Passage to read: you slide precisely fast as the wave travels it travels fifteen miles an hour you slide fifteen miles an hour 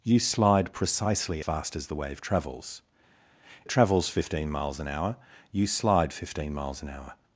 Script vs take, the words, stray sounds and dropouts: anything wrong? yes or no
no